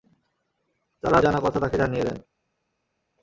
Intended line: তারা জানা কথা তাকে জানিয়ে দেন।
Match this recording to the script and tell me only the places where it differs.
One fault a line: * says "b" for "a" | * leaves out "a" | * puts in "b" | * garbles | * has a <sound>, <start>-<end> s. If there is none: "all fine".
all fine